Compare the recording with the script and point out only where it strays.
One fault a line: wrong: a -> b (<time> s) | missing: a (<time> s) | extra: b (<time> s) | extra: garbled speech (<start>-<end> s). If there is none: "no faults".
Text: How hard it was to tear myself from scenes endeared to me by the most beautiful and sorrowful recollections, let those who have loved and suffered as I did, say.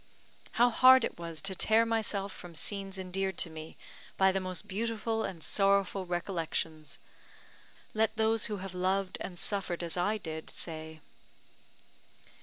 no faults